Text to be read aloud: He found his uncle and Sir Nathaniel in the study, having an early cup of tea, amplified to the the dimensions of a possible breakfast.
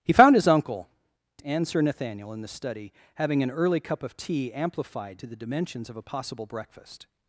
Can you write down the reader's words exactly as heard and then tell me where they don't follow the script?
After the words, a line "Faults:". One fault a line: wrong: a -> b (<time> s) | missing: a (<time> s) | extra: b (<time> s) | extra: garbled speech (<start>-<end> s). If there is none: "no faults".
He found his uncle and Sir Nathaniel in the study, having an early cup of tea, amplified to the dimensions of a possible breakfast.
Faults:
missing: the (5.4 s)